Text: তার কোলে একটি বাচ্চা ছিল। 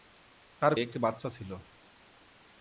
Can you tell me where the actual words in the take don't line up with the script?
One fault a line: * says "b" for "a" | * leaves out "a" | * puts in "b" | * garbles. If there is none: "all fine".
* leaves out "কোলে"